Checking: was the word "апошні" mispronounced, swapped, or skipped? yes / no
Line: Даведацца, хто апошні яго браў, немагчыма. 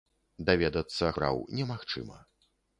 yes